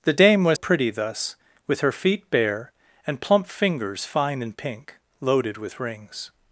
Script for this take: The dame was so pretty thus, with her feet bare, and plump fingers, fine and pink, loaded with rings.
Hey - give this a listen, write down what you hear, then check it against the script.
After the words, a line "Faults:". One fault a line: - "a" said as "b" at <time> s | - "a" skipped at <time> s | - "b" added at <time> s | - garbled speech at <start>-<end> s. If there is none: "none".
The dame was pretty thus, with her feet bare, and plump fingers, fine and pink, loaded with rings.
Faults:
- "so" skipped at 0.6 s